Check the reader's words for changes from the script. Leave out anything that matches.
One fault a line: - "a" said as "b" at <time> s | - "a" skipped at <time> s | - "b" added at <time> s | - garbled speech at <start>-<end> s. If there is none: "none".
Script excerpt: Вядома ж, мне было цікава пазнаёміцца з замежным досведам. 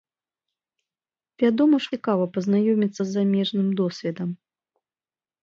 - "мне было" skipped at 1.9 s